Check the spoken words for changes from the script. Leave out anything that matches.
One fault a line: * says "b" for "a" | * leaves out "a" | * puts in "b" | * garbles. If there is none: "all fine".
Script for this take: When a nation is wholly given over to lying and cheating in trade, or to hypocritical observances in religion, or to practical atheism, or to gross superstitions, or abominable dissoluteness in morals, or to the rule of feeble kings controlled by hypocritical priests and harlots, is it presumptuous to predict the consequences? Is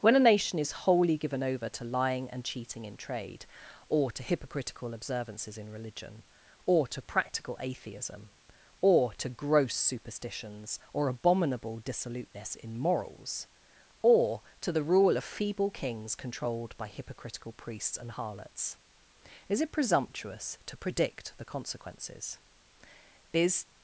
all fine